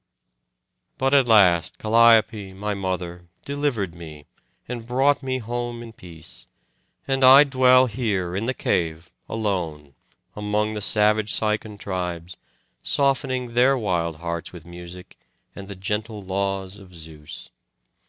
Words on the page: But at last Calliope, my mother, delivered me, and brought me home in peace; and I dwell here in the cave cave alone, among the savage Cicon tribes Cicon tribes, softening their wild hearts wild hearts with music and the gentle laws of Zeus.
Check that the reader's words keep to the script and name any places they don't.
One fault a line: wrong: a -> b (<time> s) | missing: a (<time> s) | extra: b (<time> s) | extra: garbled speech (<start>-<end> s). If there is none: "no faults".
missing: cave (9.1 s)
missing: Cicon tribes (12.4 s)
missing: wild hearts (14.5 s)